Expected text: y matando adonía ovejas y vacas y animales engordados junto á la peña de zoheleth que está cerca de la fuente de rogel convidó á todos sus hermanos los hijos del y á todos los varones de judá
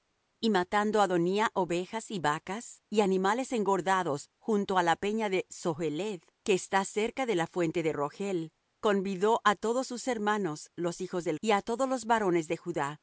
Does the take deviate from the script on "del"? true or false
false